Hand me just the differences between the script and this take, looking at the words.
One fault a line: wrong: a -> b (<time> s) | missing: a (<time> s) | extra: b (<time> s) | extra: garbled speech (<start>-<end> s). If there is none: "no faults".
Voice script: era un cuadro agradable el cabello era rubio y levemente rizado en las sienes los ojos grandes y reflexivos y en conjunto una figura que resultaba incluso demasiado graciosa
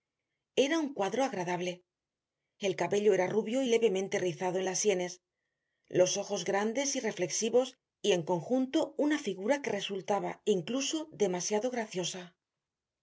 no faults